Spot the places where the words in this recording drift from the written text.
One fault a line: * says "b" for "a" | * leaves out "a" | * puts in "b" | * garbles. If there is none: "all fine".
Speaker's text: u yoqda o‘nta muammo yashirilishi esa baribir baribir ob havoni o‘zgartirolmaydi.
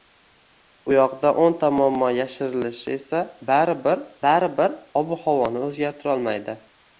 all fine